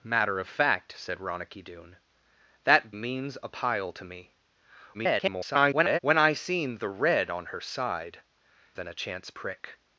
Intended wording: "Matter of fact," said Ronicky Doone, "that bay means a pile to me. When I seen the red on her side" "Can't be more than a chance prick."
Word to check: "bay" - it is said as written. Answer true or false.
false